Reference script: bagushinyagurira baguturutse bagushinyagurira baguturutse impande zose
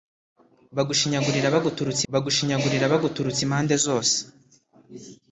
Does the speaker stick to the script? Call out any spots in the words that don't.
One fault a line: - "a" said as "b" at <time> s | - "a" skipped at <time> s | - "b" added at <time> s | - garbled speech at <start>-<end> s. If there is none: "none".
none